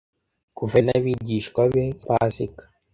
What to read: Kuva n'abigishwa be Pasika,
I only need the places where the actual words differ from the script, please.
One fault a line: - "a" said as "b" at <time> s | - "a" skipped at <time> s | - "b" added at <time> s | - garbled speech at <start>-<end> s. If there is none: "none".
none